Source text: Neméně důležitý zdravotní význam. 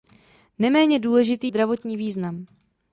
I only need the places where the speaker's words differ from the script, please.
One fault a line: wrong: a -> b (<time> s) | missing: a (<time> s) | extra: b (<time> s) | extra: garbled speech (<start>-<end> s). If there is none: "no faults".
no faults